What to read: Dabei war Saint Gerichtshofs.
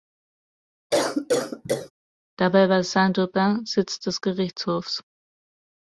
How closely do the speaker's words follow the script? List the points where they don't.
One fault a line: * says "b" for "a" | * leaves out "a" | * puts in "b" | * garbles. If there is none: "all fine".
* puts in "Aubin Sitz des"